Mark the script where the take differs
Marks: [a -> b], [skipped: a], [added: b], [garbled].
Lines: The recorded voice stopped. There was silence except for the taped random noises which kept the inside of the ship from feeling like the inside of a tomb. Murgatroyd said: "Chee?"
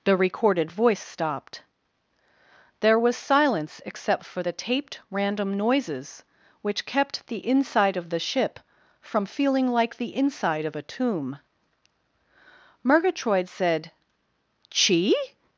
The recorded voice stopped. There was silence except for the taped random noises which kept the inside of the ship from feeling like the inside of a tomb. Murgatroyd said: "Chee?"